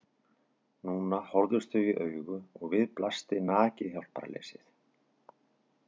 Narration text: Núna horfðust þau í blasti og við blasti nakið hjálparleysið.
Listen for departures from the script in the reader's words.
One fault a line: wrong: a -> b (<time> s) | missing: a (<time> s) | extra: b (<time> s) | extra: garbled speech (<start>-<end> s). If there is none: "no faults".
wrong: blasti -> augu (2.0 s)